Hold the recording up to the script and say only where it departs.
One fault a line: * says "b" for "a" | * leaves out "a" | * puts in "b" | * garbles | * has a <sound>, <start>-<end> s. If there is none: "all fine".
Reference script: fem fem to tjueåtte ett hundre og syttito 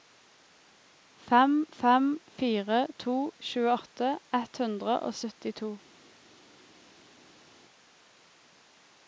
* puts in "fire"